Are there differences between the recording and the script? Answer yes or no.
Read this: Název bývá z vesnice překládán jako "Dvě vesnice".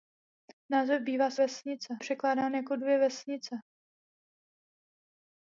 no